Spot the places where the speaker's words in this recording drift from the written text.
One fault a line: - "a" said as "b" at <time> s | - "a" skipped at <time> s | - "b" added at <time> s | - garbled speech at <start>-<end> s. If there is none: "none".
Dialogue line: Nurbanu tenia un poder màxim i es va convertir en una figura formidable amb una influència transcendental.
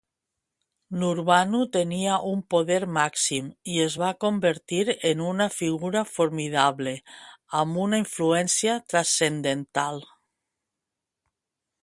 none